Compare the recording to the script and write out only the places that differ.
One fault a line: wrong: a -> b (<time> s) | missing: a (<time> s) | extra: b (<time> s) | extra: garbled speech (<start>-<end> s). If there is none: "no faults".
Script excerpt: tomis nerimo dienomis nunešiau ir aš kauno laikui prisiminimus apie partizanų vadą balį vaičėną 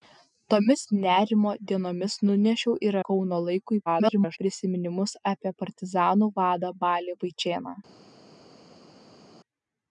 missing: aš (3.0 s)
extra: garbled speech (3.9-4.4 s)